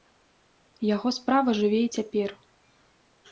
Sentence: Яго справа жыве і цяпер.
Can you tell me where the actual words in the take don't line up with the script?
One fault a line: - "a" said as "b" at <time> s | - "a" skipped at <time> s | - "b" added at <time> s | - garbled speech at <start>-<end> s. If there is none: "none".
none